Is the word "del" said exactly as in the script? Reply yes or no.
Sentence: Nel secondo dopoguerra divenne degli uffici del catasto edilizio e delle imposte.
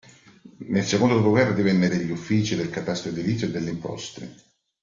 yes